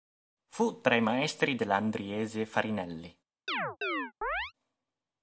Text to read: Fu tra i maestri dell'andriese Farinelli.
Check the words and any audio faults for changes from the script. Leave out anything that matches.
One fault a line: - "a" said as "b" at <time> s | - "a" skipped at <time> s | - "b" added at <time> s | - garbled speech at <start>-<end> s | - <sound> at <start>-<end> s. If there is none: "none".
- chirp at 3.5-4.5 s